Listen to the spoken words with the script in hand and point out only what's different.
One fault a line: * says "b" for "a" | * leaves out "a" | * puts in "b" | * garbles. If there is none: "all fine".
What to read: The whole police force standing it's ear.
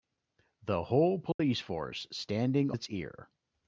all fine